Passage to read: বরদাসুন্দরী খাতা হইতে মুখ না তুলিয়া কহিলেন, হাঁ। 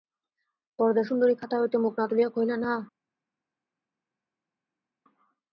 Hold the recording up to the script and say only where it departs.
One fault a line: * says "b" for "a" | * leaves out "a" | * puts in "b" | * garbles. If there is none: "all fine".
all fine